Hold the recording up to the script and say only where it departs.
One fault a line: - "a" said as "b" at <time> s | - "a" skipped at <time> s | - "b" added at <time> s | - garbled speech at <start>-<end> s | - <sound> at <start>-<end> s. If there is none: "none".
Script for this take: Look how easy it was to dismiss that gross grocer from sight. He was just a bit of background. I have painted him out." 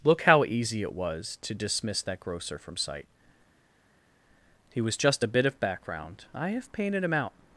- "gross" skipped at 2.2 s